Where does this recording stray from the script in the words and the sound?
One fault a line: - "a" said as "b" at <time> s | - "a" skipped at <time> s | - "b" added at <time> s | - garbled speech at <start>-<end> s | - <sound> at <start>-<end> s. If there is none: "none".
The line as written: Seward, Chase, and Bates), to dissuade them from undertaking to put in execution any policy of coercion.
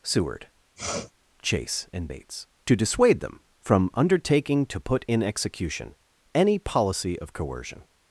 - sniff at 0.8-1.1 s